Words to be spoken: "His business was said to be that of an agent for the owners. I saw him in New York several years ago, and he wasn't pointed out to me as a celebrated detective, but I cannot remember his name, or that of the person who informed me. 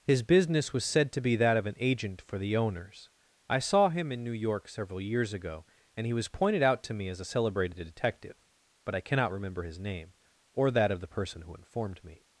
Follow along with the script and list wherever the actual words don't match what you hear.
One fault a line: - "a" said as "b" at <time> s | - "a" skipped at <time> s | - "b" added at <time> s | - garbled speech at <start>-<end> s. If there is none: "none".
- "wasn't" said as "was" at 6.1 s